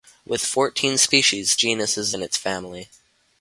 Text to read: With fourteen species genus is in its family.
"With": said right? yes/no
yes